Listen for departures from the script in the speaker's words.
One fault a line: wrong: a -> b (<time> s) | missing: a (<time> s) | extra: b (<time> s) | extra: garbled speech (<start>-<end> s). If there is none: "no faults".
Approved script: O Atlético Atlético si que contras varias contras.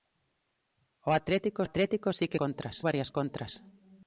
no faults